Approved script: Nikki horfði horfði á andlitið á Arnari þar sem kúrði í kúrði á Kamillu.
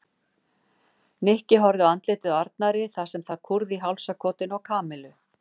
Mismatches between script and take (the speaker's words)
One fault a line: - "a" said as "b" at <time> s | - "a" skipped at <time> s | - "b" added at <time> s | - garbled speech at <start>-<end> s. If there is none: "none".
- "horfði" skipped at 1.9 s
- "það" added at 3.3 s
- "kúrði" said as "hálsakotinu" at 3.8 s